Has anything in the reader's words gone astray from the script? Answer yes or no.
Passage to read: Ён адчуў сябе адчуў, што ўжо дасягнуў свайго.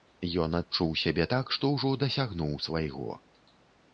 yes